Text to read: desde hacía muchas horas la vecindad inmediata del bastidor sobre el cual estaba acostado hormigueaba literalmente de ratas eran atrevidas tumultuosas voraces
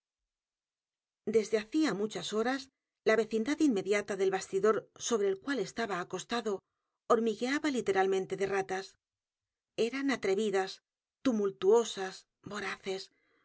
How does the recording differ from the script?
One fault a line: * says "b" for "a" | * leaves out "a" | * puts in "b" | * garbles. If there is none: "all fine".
all fine